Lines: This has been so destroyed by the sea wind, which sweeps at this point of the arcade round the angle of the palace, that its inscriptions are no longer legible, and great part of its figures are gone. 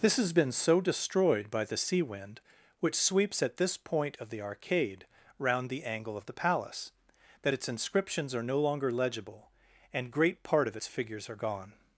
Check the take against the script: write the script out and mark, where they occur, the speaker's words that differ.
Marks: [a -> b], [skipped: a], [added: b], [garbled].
This has been so destroyed by the sea wind, which sweeps at this point of the arcade round the angle of the palace, that its inscriptions are no longer legible, and great part of its figures are gone.